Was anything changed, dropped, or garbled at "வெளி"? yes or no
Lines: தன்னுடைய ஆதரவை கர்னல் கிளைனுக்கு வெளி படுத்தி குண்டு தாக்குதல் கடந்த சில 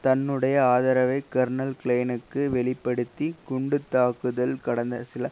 no